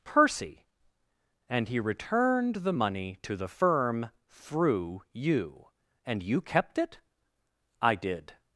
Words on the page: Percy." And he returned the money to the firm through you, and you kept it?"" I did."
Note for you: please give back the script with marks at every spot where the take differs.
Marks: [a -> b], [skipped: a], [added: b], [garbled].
Percy." And he returned the money to the firm through you, and you kept it?"" I did."